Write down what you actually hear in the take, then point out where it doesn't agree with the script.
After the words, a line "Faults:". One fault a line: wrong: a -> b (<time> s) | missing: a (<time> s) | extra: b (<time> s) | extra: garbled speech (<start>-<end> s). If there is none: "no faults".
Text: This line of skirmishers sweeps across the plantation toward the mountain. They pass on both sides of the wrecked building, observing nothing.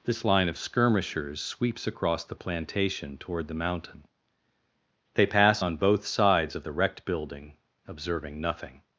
This line of skirmishers sweeps across the plantation toward the mountain. They pass on both sides of the wrecked building, observing nothing.
Faults:
no faults